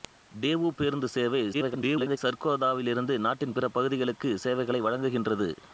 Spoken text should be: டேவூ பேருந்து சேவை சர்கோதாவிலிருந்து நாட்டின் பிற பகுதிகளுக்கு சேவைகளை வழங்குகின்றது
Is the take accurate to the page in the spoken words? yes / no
no